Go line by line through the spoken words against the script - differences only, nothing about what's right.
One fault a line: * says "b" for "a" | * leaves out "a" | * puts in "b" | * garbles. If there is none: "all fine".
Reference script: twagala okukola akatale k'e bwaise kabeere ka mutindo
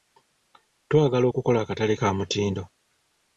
* leaves out "k'e bwaise kabeere"